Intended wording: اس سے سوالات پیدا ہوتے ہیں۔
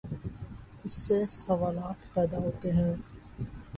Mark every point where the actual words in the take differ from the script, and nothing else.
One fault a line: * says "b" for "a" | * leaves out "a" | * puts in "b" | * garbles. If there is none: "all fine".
all fine